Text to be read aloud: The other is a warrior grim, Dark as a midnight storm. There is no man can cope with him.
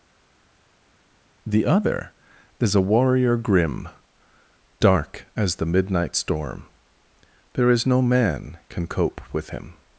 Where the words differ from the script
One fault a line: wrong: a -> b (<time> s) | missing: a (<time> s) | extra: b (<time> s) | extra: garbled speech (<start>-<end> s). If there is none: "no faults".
wrong: a -> the (5.6 s)